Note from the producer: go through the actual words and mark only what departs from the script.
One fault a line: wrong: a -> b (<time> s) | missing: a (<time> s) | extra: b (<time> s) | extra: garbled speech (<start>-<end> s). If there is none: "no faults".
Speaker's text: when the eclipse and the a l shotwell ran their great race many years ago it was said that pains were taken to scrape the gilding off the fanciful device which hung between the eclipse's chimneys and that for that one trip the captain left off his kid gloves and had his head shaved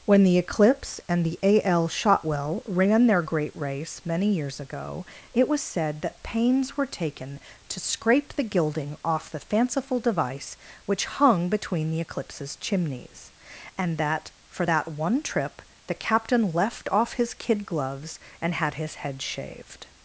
no faults